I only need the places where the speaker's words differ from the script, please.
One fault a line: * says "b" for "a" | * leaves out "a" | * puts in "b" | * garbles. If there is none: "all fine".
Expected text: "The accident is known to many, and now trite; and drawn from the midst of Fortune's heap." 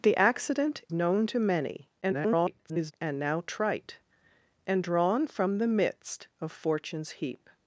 * leaves out "is"
* garbles